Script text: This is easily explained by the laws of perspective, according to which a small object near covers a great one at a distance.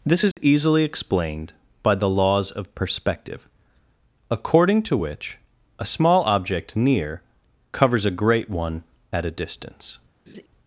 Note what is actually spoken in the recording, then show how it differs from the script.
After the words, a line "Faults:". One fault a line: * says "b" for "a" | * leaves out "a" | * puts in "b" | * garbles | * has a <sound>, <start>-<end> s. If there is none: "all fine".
This is easily explained by the laws of perspective, according to which a small object near covers a great one at a distance.
Faults:
* has a dropout, 0.3-0.4 s
* has a laugh, 10.3-10.5 s